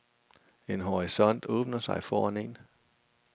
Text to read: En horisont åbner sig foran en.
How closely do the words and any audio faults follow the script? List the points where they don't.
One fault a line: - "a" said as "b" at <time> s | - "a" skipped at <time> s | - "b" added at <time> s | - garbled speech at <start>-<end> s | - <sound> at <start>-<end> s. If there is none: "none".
none